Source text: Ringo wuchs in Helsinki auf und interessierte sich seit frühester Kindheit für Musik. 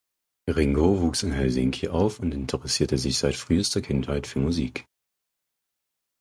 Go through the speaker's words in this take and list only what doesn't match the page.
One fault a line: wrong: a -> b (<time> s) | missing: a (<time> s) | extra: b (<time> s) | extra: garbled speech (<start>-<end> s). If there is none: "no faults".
no faults